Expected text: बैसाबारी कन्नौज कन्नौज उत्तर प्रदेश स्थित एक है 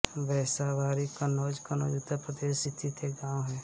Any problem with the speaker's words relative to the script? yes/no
yes